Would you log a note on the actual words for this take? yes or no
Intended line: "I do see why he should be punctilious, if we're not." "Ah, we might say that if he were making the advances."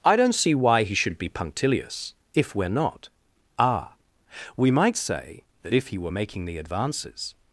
yes